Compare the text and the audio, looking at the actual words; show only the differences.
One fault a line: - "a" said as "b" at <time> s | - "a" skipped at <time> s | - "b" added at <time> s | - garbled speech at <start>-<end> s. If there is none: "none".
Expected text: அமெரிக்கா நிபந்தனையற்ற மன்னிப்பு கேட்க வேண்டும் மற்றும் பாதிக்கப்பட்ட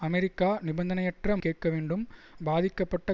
- "மன்னிப்பு" skipped at 1.4 s
- "மற்றும்" skipped at 2.0 s